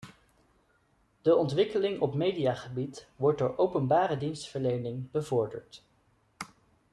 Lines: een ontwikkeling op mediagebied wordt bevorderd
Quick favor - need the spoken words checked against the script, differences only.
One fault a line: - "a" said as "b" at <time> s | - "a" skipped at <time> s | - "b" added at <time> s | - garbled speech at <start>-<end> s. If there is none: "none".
- "een" said as "de" at 1.2 s
- "door openbare dienstverlening" added at 3.4 s